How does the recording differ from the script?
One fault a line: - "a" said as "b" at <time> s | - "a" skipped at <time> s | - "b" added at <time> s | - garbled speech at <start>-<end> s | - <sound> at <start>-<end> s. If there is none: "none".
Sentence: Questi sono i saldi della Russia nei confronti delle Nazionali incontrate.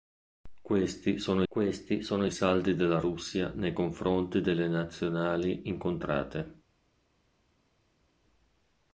- "questi sono" added at 1.5 s